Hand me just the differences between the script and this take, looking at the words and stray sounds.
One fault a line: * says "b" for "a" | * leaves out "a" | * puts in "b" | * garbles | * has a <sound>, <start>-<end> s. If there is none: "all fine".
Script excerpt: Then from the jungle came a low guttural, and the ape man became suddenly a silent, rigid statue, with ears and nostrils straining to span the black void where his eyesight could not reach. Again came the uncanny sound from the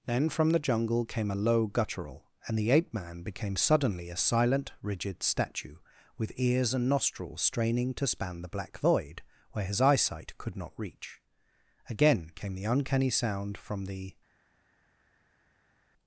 all fine